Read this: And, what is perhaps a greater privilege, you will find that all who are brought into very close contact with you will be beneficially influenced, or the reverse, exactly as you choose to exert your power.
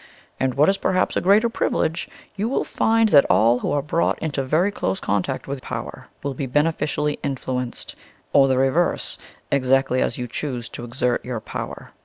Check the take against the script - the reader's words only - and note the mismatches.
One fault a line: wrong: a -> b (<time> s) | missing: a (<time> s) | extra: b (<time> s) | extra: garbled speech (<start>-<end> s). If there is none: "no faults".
wrong: you -> power (5.6 s)